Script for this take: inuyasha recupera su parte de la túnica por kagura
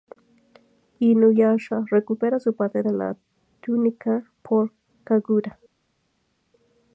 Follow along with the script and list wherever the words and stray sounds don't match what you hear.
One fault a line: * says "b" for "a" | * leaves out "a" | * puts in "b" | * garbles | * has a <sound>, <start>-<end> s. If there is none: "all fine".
all fine